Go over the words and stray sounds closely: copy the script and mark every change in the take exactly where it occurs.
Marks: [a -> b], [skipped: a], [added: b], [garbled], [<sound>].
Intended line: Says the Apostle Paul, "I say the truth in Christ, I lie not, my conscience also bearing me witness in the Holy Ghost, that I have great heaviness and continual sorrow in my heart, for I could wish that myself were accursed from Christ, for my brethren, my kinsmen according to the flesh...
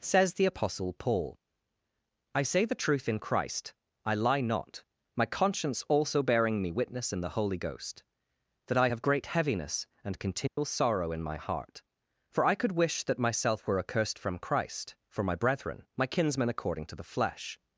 Says the Apostle Paul, "I say the truth in Christ, I lie not, my conscience also bearing me witness in the Holy Ghost, that I have great heaviness and continual [dropout] sorrow in my heart, for I could wish that myself were accursed from Christ, for my brethren, my kinsmen according to the flesh...